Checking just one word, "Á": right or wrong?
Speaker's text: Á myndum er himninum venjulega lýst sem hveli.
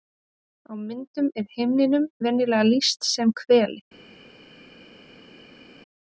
right